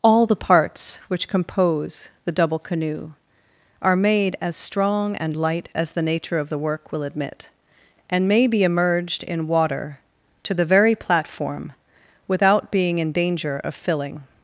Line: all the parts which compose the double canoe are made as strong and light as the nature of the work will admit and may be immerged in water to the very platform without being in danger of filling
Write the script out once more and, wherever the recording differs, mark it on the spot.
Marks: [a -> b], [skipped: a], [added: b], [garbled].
all the parts which compose the double canoe are made as strong and light as the nature of the work will admit and may be immerged in water to the very platform without being in danger of filling